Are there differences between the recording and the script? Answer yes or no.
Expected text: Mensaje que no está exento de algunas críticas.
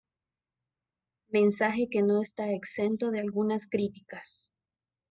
no